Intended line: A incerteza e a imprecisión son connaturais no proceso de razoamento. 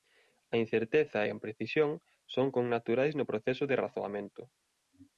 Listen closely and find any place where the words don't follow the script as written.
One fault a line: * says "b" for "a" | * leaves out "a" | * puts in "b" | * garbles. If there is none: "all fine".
all fine